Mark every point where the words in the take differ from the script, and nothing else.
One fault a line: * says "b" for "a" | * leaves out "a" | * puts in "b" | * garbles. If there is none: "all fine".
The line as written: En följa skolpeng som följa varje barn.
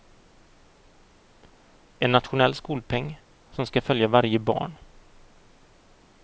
* says "nationell" for "följa"
* puts in "ska"